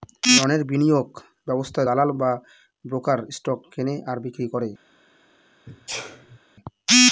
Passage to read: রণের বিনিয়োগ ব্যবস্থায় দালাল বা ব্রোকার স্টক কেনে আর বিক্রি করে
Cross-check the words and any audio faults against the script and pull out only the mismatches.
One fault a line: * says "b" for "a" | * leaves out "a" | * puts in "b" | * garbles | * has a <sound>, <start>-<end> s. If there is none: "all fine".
* has a sneeze, 5.7-6.4 s